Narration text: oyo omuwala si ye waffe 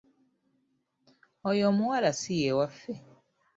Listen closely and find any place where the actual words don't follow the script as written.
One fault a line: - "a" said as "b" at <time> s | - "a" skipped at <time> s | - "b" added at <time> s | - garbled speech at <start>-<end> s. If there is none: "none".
none